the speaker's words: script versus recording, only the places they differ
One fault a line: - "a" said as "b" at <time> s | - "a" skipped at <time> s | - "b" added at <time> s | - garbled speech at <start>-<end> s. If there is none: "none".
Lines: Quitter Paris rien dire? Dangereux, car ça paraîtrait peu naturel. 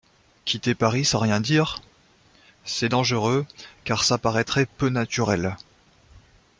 - "sans" added at 1.1 s
- "C'est" added at 2.6 s